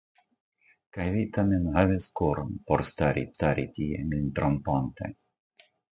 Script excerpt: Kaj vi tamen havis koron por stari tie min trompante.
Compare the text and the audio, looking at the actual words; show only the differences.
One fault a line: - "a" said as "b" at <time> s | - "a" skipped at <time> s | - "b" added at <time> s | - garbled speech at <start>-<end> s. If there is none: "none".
- "stari" added at 3.3 s